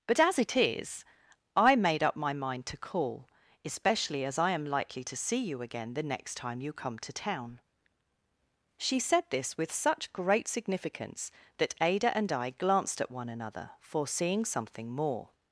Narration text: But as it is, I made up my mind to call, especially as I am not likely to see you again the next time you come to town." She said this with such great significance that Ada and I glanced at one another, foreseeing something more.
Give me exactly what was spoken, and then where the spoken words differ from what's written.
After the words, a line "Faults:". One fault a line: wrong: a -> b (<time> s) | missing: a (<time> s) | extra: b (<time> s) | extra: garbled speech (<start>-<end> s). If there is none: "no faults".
But as it is, I made up my mind to call, especially as I am likely to see you again the next time you come to town." She said this with such great significance that Ada and I glanced at one another, foreseeing something more.
Faults:
missing: not (4.7 s)